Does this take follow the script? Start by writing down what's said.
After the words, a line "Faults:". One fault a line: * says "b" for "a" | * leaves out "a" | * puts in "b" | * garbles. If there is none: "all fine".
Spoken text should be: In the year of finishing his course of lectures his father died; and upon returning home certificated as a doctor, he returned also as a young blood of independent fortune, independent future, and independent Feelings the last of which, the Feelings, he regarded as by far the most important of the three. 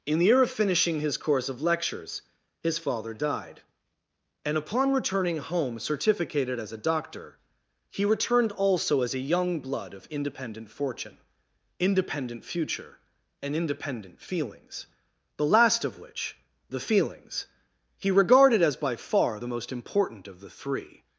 In the year of finishing his course of lectures his father died; and upon returning home certificated as a doctor, he returned also as a young blood of independent fortune, independent future, and independent Feelings the last of which, the Feelings, he regarded as by far the most important of the three.
Faults:
all fine